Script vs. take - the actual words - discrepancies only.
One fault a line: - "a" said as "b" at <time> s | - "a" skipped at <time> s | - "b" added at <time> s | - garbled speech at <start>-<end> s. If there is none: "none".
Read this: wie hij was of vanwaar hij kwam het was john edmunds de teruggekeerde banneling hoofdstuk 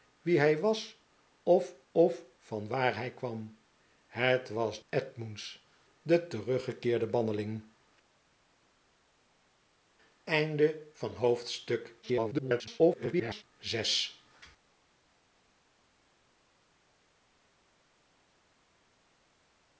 - "of" added at 1.9 s
- "john" skipped at 4.8 s
- garbled speech at 12.0-13.4 s